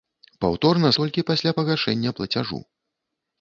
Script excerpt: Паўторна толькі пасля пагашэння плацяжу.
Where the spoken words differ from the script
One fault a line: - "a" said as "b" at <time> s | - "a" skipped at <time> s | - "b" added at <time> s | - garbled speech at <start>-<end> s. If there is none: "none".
none